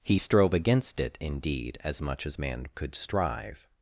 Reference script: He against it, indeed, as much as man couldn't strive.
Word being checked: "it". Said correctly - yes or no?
yes